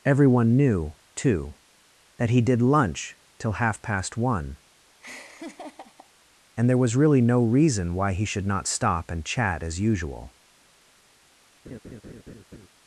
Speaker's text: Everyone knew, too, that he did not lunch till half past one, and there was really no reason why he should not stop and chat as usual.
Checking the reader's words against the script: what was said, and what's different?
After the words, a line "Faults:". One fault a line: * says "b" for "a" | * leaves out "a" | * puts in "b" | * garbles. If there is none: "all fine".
Everyone knew, too, that he did lunch till half past one, and there was really no reason why he should not stop and chat as usual.
Faults:
* leaves out "not"